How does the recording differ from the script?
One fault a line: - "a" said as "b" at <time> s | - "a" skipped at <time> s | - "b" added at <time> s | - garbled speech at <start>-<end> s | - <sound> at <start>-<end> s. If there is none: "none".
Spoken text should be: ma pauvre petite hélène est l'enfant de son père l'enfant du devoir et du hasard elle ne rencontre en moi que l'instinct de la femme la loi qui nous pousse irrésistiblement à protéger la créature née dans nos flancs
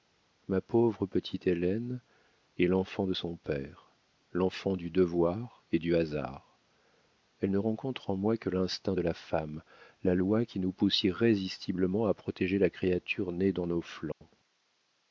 - dropout at 14.1-14.2 s